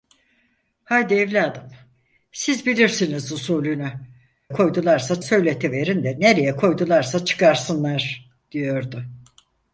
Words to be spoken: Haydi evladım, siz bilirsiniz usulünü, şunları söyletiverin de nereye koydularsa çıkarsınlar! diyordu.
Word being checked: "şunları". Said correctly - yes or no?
no